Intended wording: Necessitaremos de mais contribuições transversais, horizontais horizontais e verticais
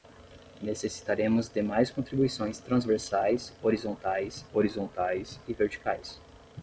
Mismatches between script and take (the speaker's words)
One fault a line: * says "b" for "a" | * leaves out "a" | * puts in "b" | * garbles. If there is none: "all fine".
all fine